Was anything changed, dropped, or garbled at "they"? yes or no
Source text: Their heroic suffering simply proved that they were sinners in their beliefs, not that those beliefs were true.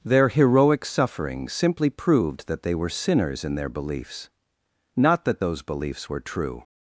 no